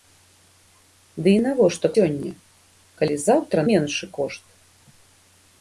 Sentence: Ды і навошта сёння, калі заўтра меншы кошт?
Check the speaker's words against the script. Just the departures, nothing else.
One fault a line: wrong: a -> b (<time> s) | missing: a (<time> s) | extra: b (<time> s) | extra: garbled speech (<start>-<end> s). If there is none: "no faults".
no faults